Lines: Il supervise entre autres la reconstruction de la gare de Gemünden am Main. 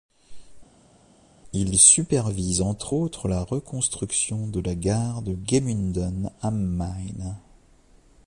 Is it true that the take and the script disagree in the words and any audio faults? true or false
false